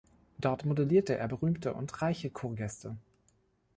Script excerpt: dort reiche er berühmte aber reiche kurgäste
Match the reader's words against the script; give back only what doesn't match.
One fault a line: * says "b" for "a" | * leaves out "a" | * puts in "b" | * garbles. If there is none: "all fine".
* says "modellierte" for "reiche"
* says "und" for "aber"